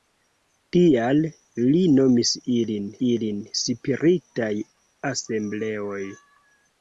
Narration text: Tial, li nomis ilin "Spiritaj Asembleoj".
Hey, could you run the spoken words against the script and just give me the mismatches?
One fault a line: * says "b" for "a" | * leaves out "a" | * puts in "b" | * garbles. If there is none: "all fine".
* puts in "ilin"